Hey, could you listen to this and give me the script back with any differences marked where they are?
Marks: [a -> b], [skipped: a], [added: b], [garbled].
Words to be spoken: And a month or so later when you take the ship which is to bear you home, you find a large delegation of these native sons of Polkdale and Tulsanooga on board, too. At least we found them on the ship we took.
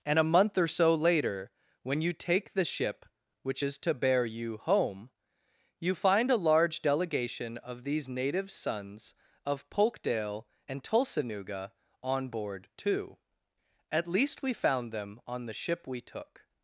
And a month or so later when you take the ship which is to bear you home, you find a large delegation of these native sons of Polkdale and Tulsanooga on board, too. At least we found them on the ship we took.